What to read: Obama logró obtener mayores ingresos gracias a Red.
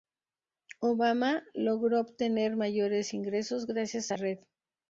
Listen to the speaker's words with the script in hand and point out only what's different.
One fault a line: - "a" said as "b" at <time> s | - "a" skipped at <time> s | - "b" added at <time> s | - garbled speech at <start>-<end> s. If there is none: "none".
none